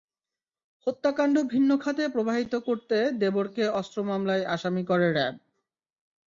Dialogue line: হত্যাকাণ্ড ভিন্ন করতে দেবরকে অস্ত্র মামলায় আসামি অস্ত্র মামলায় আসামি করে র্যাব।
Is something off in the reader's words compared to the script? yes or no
yes